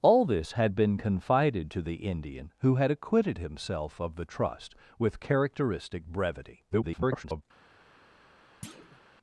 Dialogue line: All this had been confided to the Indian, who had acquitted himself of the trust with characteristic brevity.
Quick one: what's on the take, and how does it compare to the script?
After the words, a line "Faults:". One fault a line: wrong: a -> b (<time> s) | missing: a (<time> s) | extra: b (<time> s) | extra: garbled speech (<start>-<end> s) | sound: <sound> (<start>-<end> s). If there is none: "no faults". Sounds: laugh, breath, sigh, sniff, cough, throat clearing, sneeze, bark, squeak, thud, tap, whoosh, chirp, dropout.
All this had been confided to the Indian, who had acquitted himself of the trust with characteristic brevity. [garbled]
Faults:
extra: garbled speech (6.7-7.4 s)
sound: thud (8.6-9.0 s)